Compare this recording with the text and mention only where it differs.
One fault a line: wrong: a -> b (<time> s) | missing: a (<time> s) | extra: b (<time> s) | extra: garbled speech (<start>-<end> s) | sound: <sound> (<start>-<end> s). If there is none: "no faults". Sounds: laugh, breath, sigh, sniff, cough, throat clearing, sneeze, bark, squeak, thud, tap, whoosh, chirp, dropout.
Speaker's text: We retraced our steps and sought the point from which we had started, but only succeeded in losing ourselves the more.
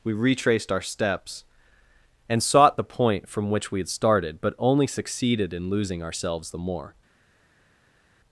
no faults